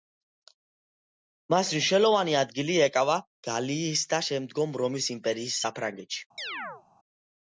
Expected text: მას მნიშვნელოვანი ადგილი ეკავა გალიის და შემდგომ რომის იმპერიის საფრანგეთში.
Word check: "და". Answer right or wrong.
right